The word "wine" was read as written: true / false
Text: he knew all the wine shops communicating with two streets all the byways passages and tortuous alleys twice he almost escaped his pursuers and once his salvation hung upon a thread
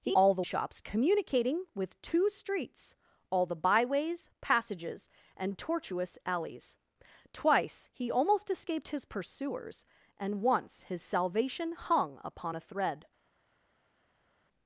false